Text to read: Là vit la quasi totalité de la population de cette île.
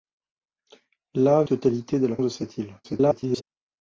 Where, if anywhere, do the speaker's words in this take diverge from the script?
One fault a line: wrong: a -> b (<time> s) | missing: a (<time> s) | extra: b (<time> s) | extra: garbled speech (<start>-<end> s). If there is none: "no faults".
missing: vit la quasi (1.4 s)
missing: population (2.2 s)
extra: garbled speech (2.8-3.4 s)